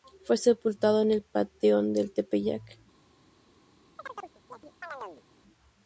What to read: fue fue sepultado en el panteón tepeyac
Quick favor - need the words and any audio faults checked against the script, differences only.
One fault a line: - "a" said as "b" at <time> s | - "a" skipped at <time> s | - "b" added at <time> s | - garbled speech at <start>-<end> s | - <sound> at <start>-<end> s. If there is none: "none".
- "fue" skipped at 0.3 s
- "del" added at 1.9 s
- chirp at 4.0-5.2 s